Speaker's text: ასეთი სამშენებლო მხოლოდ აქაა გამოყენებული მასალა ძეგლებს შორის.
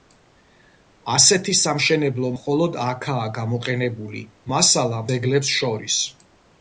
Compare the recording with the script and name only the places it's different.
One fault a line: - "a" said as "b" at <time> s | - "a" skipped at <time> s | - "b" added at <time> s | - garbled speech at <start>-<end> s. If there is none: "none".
none